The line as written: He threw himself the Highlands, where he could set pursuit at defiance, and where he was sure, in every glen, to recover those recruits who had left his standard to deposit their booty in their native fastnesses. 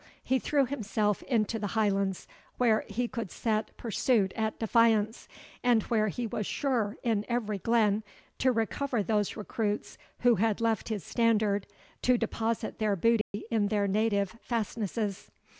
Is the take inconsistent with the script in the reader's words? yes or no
yes